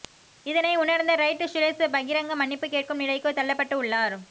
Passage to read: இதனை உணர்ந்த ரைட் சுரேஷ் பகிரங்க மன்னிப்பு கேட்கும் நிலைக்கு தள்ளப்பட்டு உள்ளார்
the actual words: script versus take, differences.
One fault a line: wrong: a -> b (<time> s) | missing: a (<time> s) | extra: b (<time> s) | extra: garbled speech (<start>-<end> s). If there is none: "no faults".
no faults